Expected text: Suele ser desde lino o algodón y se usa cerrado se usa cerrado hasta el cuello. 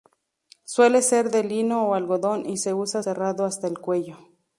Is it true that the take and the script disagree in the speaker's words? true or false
true